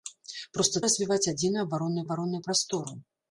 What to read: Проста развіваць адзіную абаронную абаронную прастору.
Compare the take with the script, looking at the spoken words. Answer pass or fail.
pass